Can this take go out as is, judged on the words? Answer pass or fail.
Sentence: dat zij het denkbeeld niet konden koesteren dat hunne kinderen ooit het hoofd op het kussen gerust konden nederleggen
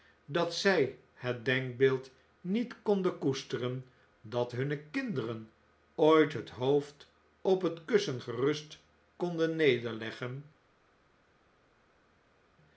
pass